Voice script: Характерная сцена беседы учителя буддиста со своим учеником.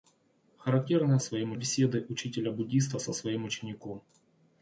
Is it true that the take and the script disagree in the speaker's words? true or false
true